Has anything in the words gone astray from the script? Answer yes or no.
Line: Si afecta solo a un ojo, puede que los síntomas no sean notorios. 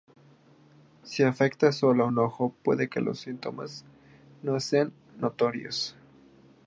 no